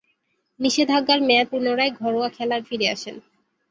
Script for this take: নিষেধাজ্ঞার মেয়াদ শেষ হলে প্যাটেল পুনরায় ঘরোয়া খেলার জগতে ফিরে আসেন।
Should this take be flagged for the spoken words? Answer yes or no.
yes